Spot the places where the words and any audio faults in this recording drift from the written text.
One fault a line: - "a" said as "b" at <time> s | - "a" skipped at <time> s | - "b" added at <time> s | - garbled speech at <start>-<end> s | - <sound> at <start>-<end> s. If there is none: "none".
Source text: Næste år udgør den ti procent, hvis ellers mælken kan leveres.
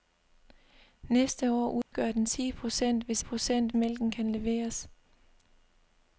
- dropout at 1.8-1.9 s
- "ellers" said as "procent" at 3.2 s